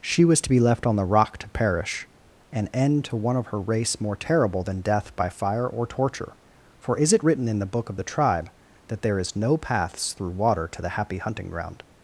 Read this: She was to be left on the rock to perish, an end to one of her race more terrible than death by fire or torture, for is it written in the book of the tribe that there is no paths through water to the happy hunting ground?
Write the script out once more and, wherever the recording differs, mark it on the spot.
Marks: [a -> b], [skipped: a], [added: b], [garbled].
She was to be left on the rock to perish, an end to one of her race more terrible than death by fire or torture, for is it written in the book of the tribe that there is no paths through water to the happy hunting ground?